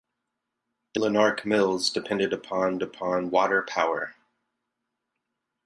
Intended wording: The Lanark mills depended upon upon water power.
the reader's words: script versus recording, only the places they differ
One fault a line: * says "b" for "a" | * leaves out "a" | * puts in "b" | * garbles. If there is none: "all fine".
all fine